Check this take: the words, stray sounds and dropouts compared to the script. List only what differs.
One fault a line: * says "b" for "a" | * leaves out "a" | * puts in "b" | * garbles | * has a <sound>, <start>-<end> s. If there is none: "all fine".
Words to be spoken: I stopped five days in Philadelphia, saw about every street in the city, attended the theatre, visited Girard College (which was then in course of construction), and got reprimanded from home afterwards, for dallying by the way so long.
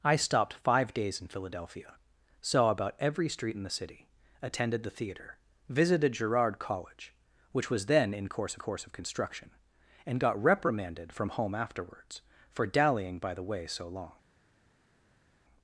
* puts in "course"